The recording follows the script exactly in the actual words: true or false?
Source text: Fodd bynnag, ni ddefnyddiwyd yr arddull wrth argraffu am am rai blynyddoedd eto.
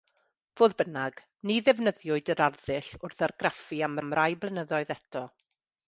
true